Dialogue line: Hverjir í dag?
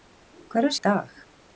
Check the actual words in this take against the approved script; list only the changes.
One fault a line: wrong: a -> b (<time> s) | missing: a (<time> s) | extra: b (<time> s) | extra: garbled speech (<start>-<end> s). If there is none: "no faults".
no faults